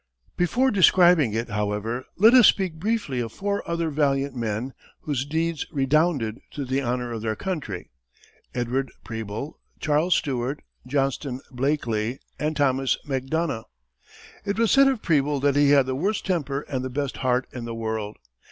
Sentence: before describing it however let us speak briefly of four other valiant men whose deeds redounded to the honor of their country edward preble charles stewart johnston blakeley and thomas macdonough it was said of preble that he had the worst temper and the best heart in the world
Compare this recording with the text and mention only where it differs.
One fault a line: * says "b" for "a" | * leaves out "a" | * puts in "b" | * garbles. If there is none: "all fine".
all fine